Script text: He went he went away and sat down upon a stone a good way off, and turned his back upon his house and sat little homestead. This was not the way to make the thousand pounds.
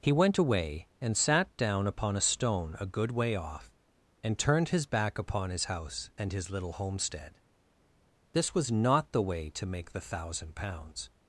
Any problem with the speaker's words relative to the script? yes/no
yes